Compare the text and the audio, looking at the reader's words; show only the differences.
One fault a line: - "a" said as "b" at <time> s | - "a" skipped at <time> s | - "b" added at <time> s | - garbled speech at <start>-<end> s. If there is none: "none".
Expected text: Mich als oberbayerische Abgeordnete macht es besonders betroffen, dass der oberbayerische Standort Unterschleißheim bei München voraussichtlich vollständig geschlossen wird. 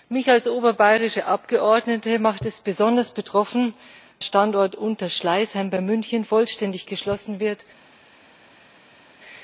- "dass der oberbayerische" skipped at 3.7 s
- "voraussichtlich" skipped at 6.3 s